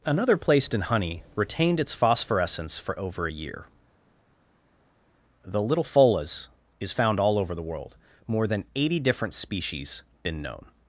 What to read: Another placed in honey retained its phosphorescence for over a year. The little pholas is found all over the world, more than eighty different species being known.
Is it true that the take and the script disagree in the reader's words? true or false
true